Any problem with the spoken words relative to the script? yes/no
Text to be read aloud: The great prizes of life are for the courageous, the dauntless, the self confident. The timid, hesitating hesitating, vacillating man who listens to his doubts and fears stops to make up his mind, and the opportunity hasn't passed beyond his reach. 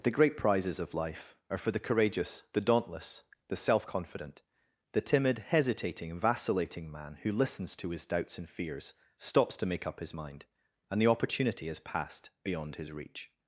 yes